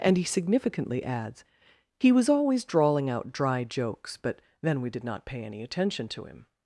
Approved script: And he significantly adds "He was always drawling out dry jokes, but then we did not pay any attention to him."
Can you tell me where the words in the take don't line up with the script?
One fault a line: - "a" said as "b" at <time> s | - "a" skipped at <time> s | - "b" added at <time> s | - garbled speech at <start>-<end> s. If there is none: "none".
none